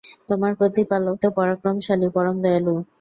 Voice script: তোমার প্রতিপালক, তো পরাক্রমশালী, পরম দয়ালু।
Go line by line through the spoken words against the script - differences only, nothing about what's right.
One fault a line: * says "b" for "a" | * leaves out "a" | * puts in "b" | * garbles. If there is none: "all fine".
all fine